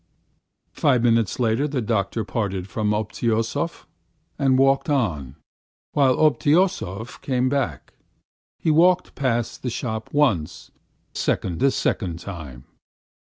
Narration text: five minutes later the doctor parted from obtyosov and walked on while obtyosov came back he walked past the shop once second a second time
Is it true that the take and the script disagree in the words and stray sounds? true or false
false